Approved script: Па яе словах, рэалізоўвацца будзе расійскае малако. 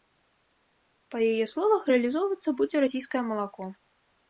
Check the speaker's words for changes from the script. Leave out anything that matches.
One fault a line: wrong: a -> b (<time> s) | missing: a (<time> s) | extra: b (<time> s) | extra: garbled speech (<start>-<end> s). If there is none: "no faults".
no faults